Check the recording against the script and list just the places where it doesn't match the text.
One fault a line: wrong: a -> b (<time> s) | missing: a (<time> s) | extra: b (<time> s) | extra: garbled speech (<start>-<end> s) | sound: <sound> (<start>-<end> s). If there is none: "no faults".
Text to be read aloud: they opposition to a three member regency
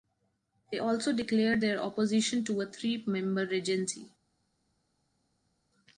extra: also declared their (0.8 s)